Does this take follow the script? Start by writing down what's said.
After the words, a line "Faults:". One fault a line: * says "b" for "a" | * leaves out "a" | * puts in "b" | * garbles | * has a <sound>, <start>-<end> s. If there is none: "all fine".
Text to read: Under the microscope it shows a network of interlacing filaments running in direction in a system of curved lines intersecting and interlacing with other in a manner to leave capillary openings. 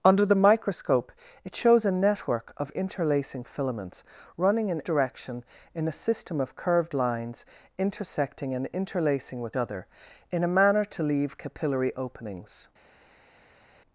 Under the microscope it shows a network of interlacing filaments running in direction in a system of curved lines intersecting and interlacing with other in a manner to leave capillary openings.
Faults:
all fine